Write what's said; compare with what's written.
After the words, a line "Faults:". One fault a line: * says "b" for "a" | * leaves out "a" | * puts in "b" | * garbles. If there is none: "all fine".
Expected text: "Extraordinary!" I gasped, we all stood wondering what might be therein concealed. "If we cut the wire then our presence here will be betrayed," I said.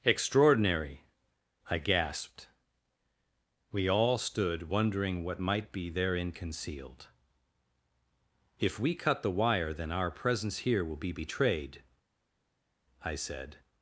"Extraordinary!" I gasped, we all stood wondering what might be therein concealed. "If we cut the wire then our presence here will be betrayed," I said.
Faults:
all fine